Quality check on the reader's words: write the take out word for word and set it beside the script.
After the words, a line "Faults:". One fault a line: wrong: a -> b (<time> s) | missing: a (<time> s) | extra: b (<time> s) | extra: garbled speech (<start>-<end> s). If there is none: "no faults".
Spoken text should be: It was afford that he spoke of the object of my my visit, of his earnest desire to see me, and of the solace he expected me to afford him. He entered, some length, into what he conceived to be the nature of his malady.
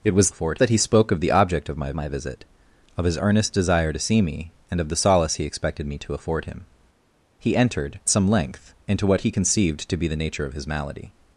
It was afford that he spoke of the object of my my visit, of his earnest desire to see me, and of the solace he expected me to afford him. He entered, some length, into what he conceived to be the nature of his malady.
Faults:
no faults